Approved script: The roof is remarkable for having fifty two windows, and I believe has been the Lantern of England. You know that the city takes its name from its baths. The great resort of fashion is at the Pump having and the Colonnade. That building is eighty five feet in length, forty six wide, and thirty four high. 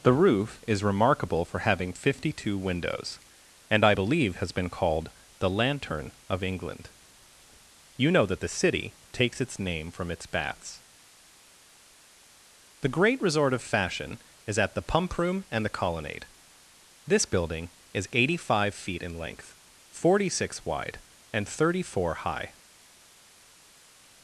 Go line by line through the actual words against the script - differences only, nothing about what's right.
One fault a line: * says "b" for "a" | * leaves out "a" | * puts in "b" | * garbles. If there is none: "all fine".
* puts in "called"
* says "room" for "having"
* says "This" for "That"